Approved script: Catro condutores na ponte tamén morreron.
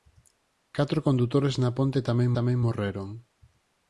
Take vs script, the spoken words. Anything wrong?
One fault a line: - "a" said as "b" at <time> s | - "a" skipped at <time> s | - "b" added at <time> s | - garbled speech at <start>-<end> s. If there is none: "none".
- "tamén" added at 2.4 s